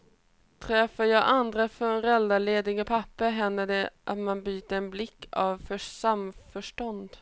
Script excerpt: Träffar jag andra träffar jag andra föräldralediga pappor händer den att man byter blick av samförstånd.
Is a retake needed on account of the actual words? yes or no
yes